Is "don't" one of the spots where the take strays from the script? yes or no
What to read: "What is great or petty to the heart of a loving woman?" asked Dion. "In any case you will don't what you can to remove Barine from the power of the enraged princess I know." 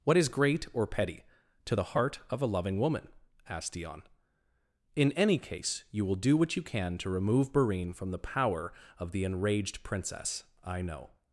yes